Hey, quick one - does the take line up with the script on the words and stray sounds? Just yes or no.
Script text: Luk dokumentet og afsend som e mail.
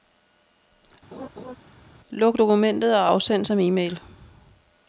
no